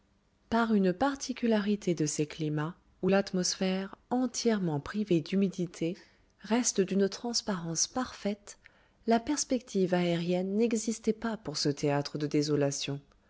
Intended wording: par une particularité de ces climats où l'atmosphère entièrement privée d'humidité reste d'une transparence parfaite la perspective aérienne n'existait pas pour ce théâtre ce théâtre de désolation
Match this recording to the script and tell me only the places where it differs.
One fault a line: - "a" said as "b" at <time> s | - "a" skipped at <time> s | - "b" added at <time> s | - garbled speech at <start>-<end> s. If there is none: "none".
- "ce théâtre" skipped at 12.2 s